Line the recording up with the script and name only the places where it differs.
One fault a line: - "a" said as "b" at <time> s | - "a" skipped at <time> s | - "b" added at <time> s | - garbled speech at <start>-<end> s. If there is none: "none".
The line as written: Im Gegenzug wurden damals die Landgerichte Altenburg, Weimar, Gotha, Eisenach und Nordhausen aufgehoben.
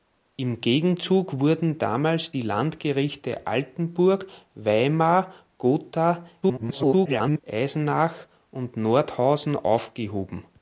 - garbled speech at 6.4-7.4 s